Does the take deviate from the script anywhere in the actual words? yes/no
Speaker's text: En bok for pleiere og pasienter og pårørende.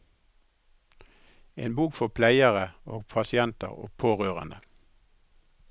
no